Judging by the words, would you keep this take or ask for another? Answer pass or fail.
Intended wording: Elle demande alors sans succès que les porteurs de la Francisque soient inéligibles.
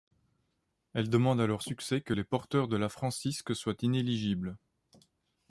fail